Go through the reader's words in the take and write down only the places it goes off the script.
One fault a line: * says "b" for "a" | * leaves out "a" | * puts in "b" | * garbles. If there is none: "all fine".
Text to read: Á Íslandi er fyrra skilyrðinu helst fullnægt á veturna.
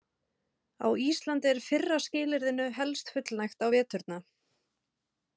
all fine